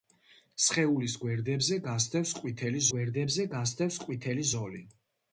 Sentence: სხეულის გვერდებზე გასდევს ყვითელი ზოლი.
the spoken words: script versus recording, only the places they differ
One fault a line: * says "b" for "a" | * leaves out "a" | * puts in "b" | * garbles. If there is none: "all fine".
* puts in "გვერდებზე გასდევს ყვითელი"